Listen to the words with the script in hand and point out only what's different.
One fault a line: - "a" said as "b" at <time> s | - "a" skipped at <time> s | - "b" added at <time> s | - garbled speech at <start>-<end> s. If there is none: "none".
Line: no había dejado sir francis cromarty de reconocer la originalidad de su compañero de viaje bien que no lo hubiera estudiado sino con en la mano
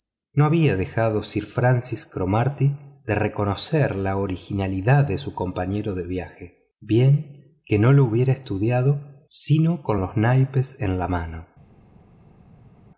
- "los naipes" added at 10.0 s